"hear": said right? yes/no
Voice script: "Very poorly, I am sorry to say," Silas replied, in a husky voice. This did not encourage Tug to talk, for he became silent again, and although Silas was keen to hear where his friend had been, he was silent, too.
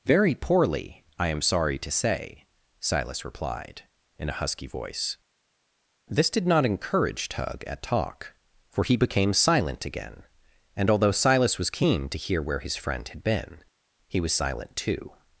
yes